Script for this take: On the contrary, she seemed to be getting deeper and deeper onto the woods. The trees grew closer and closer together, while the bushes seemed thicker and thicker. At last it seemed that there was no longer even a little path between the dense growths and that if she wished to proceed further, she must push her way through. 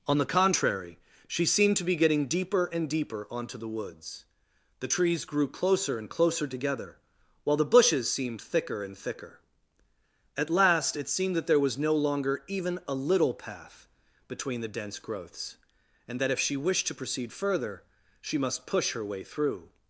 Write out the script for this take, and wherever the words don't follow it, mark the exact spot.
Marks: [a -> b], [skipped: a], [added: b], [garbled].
On the contrary, she seemed to be getting deeper and deeper onto the woods. The trees grew closer and closer together, while the bushes seemed thicker and thicker. At last it seemed that there was no longer even a little path between the dense growths and that if she wished to proceed further, she must push her way through.